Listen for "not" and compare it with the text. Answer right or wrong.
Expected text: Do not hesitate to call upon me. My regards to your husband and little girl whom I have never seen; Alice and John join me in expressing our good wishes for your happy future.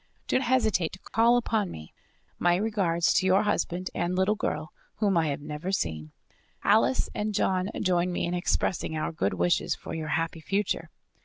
wrong